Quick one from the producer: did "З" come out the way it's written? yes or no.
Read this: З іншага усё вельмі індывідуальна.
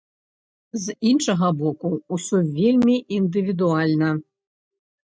yes